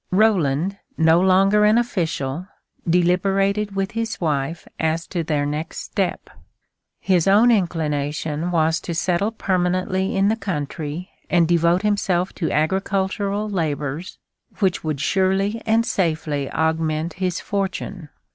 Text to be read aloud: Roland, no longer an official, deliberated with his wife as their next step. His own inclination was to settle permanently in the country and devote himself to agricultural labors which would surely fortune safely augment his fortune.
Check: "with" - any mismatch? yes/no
no